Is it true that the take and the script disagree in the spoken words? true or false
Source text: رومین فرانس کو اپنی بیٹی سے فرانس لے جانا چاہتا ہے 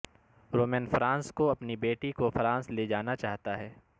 true